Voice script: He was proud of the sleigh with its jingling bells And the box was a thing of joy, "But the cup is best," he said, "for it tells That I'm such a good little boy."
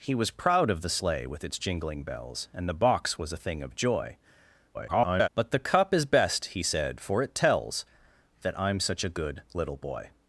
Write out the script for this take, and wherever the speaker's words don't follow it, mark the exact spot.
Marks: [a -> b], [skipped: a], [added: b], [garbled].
He was proud of the sleigh with its jingling bells And the box was a thing of joy, [garbled] "But the cup is best," he said, "for it tells That I'm such a good little boy."